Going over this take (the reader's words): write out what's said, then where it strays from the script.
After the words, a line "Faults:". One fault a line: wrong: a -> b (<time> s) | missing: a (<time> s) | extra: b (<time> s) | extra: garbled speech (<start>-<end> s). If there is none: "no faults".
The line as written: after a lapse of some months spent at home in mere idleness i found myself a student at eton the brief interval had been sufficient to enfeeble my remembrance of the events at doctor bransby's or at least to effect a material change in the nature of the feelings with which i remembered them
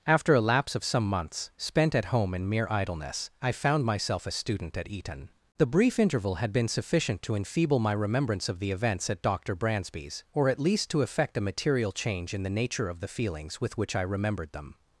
after a lapse of some months spent at home in mere idleness i found myself a student at eton the brief interval had been sufficient to enfeeble my remembrance of the events at doctor bransby's or at least to effect a material change in the nature of the feelings with which i remembered them
Faults:
no faults